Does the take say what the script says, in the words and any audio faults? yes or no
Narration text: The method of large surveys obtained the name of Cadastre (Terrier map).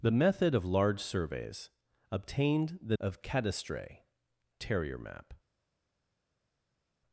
no